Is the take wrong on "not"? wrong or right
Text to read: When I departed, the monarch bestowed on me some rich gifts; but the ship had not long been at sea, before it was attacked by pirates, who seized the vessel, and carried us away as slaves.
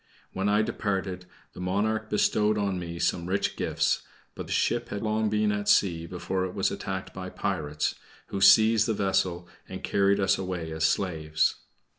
wrong